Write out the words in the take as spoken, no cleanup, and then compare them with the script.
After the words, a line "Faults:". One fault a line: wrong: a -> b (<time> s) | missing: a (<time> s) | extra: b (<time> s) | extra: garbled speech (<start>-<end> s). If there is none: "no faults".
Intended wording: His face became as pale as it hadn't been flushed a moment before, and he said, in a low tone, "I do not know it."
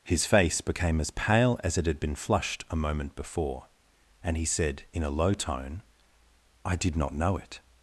His face became as pale as it had been flushed a moment before, and he said, in a low tone, "I did not know it."
Faults:
wrong: hadn't -> had (1.8 s)
wrong: do -> did (6.7 s)